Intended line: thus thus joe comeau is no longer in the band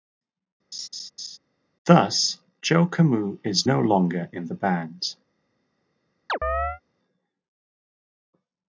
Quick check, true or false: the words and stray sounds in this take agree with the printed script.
false